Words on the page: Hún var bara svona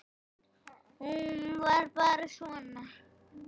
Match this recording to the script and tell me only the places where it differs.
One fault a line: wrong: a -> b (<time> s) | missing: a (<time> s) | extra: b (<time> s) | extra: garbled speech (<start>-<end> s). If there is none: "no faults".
no faults